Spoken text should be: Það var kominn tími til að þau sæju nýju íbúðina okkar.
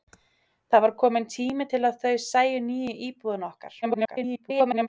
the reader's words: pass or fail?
fail